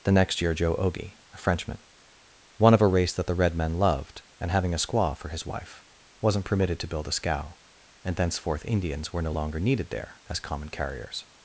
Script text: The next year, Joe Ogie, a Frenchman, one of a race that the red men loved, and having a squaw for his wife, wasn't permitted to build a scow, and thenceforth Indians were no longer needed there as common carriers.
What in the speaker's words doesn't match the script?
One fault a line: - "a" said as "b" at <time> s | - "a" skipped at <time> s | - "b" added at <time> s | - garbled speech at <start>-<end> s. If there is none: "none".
none